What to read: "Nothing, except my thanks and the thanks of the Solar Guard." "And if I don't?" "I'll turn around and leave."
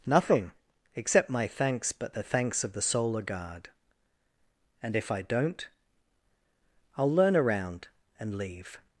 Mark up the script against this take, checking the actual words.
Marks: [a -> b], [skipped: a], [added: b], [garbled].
"Nothing, except my thanks [and -> but] the thanks of the Solar Guard." "And if I don't?" "I'll [turn -> learn] around and leave."